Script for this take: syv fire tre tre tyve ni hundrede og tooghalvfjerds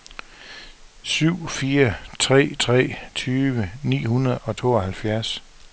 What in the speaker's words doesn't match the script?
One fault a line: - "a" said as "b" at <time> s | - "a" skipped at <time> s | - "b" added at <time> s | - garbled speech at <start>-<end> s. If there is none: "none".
none